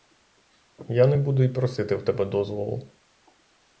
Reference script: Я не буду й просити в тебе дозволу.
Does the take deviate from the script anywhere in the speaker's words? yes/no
no